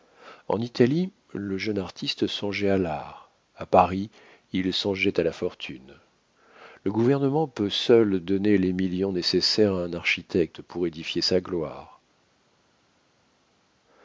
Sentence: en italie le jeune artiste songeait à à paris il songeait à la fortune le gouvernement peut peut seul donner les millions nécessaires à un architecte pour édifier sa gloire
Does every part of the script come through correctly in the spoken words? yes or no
no